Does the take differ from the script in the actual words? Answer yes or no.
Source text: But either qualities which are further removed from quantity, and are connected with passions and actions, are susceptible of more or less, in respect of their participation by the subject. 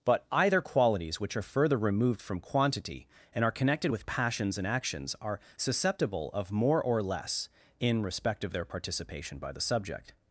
no